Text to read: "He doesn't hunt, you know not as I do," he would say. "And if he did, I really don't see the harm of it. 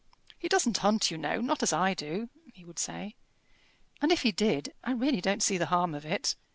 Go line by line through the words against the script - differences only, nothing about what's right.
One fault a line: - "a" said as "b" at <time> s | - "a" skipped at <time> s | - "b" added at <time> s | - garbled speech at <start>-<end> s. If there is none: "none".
none